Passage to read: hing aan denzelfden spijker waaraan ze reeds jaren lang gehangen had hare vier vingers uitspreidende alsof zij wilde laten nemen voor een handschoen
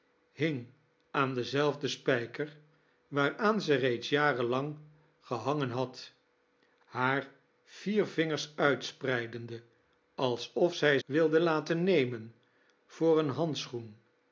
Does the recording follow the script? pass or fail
pass